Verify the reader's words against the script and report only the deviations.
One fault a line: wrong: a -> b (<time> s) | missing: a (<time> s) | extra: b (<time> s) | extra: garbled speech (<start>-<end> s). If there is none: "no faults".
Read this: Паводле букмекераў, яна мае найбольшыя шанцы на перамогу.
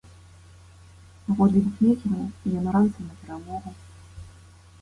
missing: мае найбольшыя (2.7 s)